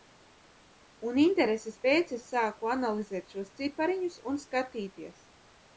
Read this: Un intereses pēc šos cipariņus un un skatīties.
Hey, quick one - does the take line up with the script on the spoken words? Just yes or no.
no